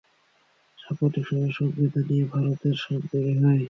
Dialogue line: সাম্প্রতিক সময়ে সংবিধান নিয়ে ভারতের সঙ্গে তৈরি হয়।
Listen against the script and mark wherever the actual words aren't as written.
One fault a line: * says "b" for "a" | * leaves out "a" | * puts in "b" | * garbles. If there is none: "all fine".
all fine